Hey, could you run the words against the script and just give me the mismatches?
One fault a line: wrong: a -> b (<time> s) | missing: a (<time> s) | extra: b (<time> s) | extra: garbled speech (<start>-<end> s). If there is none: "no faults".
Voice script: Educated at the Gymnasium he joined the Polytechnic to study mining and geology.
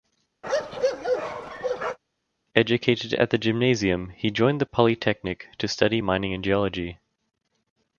no faults